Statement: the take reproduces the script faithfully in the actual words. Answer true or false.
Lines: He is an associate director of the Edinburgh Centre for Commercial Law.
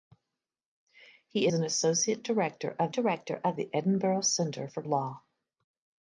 false